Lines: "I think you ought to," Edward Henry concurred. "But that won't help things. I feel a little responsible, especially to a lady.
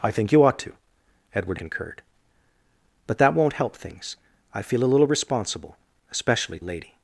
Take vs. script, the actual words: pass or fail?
fail